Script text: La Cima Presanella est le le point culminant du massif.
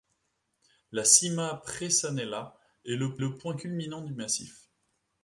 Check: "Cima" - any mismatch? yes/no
no